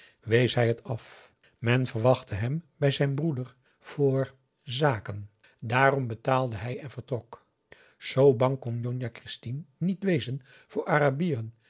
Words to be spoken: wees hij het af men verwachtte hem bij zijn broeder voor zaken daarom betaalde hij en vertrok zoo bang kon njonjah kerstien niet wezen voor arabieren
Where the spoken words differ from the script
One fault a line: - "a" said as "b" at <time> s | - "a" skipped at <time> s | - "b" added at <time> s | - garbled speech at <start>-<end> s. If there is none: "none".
none